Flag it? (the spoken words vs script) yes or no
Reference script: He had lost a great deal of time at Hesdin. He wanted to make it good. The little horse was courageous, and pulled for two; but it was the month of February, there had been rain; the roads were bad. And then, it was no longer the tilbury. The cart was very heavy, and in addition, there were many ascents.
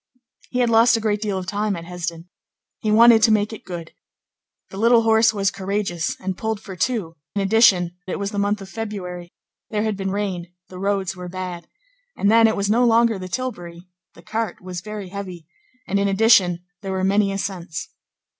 yes